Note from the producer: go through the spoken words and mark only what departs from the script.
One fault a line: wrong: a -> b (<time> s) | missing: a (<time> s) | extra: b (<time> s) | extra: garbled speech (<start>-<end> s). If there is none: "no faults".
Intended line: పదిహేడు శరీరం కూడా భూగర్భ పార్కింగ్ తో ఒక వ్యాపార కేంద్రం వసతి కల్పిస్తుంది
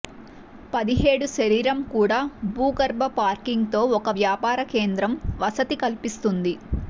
no faults